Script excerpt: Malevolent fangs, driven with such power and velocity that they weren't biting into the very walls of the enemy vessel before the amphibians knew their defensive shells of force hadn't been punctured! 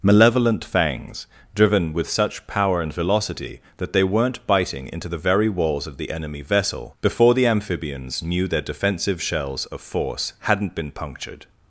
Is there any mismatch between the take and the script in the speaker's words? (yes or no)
no